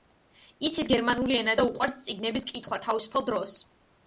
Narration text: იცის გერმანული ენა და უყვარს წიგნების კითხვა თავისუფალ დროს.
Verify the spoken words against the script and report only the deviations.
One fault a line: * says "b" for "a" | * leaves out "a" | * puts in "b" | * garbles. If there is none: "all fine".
all fine